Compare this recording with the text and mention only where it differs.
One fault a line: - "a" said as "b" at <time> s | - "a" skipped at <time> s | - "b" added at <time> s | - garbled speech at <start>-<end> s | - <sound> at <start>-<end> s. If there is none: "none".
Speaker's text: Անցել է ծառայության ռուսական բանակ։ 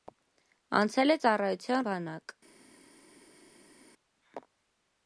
- "ռուսական" skipped at 1.8 s